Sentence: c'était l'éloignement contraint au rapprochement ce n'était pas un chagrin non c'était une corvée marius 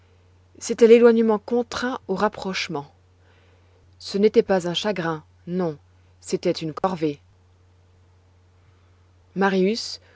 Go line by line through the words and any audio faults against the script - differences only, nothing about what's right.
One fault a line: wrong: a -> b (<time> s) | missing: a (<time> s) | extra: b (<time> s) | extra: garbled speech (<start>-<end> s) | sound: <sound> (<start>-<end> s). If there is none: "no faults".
sound: dropout (6.8-6.8 s)